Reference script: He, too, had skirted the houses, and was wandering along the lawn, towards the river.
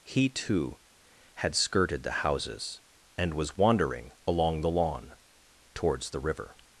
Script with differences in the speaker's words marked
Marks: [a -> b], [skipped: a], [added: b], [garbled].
He, too, had skirted the houses, and was wandering along the lawn, towards the river.